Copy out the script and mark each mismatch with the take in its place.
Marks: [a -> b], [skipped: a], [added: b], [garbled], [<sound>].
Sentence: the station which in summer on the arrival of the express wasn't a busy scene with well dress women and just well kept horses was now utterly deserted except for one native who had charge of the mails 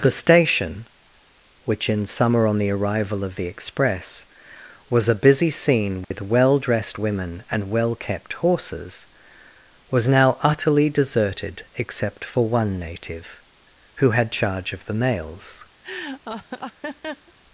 the station which in summer on the arrival of the express [wasn't -> was] a busy scene with [dropout] well [dress -> dressed] women and [skipped: just] well kept horses was now utterly deserted except for one native who had charge of the mails [laugh]